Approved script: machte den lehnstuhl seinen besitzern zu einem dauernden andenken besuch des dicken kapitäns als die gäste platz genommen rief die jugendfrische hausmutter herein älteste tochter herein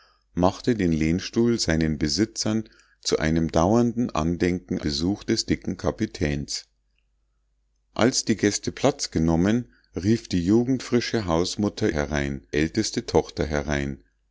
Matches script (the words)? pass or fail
pass